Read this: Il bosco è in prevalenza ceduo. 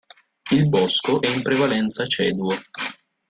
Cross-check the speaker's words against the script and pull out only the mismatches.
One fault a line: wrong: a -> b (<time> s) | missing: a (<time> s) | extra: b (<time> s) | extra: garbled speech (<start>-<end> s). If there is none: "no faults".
no faults